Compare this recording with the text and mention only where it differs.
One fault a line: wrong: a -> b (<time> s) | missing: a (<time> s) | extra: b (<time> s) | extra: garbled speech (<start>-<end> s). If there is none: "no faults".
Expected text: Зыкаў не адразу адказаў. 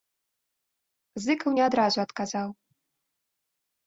no faults